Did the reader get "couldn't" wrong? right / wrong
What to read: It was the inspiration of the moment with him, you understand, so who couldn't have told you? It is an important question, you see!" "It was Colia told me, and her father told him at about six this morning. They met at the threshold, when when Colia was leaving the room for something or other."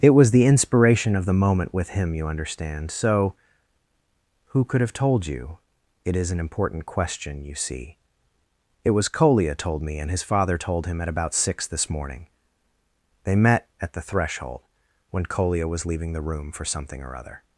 wrong